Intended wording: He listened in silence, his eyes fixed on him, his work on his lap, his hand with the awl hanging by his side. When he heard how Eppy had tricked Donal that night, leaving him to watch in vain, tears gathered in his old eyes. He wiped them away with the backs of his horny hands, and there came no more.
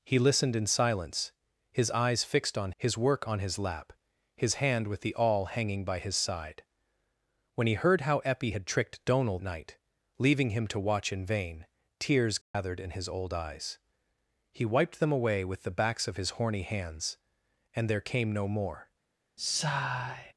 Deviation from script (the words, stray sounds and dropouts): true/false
true